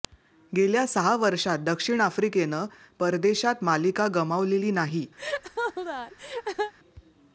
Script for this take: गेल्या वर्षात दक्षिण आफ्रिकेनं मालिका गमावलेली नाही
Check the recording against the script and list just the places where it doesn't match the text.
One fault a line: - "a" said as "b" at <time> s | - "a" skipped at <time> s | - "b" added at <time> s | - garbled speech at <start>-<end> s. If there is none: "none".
- "सहा" added at 0.9 s
- "परदेशात" added at 3.0 s